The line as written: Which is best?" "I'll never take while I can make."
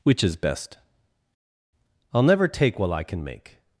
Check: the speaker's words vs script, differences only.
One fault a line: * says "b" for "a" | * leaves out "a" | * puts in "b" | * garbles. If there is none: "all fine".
all fine